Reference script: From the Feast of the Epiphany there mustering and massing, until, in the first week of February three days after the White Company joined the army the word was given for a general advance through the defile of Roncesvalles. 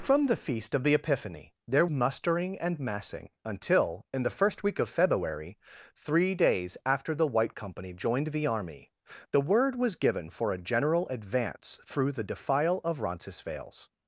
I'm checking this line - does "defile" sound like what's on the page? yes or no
yes